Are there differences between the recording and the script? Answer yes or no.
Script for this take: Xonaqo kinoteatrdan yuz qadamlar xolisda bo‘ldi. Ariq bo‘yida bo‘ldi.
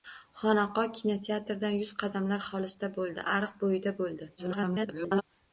yes